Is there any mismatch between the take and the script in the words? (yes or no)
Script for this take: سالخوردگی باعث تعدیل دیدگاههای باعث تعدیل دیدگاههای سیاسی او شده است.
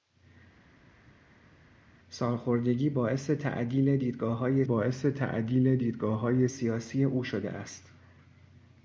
no